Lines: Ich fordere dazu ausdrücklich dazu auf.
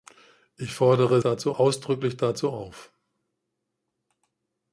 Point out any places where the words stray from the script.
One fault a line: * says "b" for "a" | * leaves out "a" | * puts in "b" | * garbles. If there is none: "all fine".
all fine